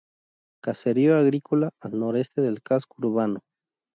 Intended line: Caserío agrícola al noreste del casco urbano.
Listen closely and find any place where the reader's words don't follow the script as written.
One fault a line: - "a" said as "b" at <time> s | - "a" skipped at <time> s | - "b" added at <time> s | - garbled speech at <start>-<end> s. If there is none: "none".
none